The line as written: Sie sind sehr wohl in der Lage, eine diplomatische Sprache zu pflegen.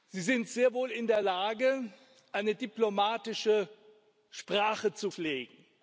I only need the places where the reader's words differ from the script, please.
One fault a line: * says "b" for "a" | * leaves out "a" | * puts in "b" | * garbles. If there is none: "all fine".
all fine